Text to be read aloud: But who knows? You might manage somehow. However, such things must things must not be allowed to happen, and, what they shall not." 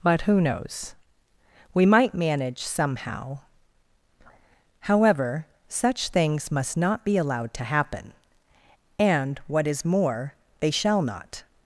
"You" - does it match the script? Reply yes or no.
no